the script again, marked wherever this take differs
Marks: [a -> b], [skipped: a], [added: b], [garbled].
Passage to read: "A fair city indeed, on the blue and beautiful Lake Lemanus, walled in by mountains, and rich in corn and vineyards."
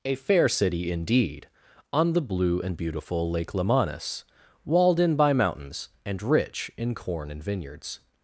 "A fair city indeed, on the blue and beautiful Lake Lemanus, walled in by mountains, and rich in corn and vineyards."